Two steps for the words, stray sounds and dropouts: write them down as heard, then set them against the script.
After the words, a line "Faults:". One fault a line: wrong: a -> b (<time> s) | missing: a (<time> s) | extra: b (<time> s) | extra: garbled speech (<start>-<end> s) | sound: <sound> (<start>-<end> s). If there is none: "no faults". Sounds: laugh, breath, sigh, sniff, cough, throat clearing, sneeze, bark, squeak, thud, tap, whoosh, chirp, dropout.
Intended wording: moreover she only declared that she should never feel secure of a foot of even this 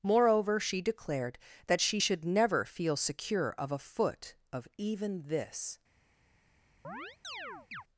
moreover she declared that she should never feel secure of a foot of even this
Faults:
missing: only (0.8 s)
sound: chirp (6.8-7.8 s)